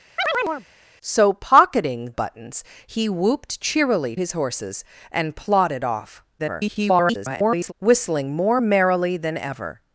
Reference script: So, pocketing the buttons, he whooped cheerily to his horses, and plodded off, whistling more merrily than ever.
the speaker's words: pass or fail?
fail